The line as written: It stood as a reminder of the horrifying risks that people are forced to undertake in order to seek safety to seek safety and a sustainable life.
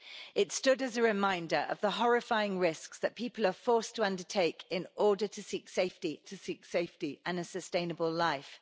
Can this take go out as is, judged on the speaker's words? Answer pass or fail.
pass